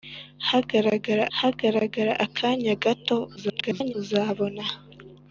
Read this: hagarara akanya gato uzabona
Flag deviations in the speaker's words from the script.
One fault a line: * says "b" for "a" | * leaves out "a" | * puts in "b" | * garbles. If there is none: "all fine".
* puts in "hagarara"
* garbles